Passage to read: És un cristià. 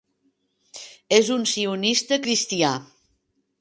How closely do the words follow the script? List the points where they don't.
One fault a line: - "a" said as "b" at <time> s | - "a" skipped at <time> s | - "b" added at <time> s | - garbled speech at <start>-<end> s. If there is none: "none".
- "sionista" added at 1.5 s